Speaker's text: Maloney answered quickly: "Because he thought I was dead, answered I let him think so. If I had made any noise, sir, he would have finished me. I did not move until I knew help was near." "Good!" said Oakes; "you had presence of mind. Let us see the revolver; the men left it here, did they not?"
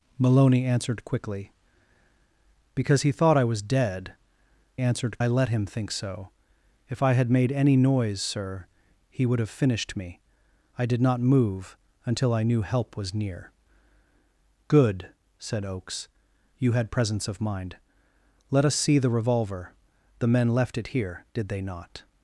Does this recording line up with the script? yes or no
yes